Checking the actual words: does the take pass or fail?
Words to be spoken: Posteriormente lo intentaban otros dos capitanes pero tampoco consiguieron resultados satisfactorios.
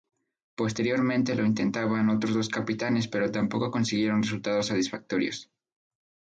pass